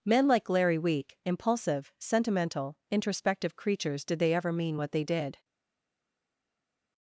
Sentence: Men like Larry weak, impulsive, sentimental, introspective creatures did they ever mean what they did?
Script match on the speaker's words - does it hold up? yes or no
yes